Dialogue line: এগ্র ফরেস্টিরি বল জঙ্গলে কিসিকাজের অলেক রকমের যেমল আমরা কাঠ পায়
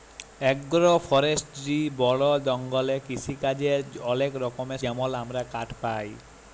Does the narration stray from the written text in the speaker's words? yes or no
no